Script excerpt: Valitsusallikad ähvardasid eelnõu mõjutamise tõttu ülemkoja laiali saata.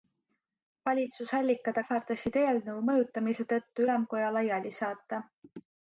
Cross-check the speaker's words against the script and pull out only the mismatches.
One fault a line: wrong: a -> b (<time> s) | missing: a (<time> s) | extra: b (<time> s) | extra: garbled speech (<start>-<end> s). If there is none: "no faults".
no faults